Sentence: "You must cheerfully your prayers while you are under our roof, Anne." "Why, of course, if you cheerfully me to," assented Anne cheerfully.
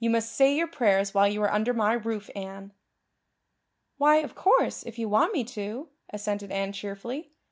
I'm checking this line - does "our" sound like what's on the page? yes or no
no